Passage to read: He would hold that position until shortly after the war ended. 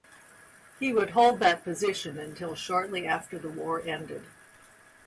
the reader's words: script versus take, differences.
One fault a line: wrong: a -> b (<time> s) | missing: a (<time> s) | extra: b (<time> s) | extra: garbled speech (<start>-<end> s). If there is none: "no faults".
no faults